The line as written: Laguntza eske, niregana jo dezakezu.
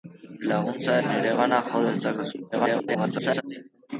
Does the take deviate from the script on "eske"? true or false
true